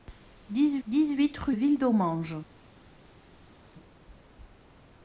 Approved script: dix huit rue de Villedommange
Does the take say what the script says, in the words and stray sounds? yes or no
no